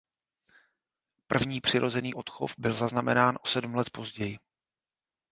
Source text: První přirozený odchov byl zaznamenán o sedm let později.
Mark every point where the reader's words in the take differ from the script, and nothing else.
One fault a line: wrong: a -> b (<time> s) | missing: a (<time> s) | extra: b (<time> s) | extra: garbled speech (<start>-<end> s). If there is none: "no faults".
no faults